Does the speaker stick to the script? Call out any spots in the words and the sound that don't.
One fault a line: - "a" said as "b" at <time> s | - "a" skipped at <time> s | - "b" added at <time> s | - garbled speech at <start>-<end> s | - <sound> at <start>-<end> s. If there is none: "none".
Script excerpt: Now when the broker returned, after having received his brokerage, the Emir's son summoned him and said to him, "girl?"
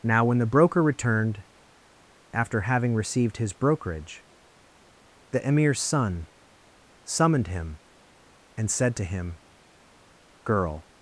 none